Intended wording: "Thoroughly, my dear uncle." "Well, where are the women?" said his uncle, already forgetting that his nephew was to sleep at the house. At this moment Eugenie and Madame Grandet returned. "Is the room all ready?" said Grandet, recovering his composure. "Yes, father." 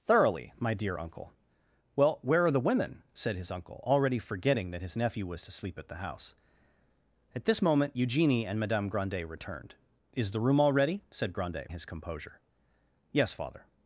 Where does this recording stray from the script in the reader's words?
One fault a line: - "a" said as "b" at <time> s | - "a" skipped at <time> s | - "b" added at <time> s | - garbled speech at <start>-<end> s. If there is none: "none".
- "recovering" skipped at 11.7 s